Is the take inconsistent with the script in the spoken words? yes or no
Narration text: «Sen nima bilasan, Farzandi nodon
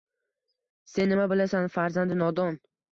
no